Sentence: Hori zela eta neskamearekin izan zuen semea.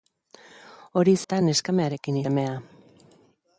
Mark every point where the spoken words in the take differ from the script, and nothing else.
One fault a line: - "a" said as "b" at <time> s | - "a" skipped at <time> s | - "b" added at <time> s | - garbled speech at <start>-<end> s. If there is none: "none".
- "zela" skipped at 1.1 s
- "izan zuen" skipped at 2.2 s